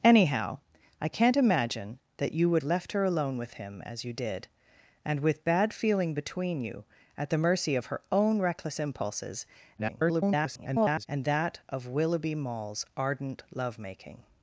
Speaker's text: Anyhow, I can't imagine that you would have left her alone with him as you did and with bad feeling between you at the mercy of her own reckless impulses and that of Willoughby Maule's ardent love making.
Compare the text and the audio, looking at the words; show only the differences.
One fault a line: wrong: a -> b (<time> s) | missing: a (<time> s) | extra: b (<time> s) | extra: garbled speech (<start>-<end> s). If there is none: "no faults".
missing: have (2.6 s)
extra: garbled speech (9.8-11.1 s)